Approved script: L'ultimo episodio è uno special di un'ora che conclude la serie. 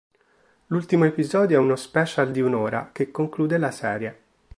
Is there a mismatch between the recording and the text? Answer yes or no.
no